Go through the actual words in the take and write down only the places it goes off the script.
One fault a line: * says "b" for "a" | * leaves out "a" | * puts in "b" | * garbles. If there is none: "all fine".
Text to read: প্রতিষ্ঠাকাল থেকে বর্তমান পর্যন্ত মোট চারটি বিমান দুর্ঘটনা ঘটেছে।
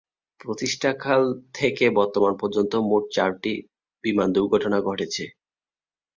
all fine